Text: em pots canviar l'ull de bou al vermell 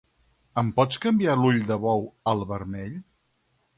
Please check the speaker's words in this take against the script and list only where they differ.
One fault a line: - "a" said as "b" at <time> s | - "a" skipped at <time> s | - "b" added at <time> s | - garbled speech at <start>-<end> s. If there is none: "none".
none